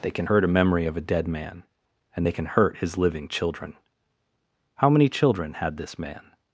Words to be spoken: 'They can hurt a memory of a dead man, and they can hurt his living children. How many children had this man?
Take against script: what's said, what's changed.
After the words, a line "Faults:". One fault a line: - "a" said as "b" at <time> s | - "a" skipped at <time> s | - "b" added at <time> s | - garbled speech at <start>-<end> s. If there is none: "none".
'They can hurt a memory of a dead man, and they can hurt his living children. How many children had this man?
Faults:
none